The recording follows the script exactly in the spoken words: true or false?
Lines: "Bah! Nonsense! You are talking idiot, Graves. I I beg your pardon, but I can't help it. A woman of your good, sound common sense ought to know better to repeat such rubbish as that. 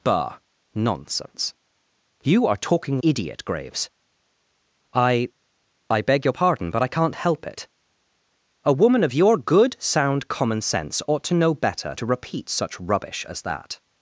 true